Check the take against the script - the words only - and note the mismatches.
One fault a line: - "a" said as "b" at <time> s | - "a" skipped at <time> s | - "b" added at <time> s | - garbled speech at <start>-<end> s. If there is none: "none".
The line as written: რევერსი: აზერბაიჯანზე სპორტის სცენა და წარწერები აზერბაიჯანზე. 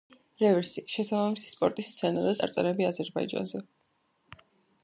- "აზერბაიჯანზე" said as "შესაბამისი" at 0.9 s